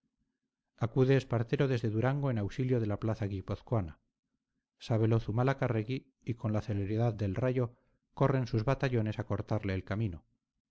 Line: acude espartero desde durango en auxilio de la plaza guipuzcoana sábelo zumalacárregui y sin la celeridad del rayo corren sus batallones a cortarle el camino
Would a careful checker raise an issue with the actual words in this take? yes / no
yes